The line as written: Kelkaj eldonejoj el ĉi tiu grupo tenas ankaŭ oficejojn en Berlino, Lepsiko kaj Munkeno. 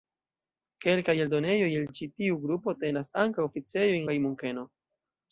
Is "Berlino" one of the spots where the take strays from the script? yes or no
yes